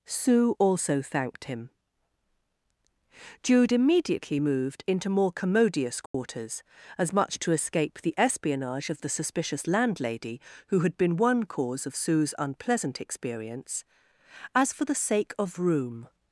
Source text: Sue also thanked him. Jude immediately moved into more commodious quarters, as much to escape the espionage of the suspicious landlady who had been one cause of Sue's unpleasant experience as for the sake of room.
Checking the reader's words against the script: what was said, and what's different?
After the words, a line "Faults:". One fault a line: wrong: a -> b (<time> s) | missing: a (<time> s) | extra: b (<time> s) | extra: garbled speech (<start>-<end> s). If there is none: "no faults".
Sue also thanked him. Jude immediately moved into more commodious quarters, as much to escape the espionage of the suspicious landlady who had been one cause of Sue's unpleasant experience as for the sake of room.
Faults:
no faults